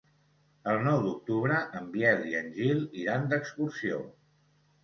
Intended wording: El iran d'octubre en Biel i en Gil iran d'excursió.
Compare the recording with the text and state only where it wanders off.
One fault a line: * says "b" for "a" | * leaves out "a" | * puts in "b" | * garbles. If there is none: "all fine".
* says "nou" for "iran"